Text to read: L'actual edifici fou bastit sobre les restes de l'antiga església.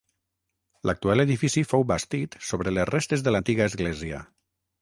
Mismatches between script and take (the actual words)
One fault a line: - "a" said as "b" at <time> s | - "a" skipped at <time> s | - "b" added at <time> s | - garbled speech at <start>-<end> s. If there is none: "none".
none